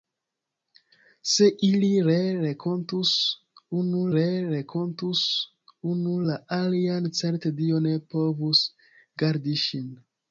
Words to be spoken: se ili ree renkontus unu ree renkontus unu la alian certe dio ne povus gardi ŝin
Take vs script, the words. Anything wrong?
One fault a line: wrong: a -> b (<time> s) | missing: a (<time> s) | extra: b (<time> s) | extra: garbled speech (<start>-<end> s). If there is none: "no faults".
no faults